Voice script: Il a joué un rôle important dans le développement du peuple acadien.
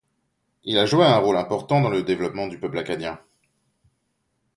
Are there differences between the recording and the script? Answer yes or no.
no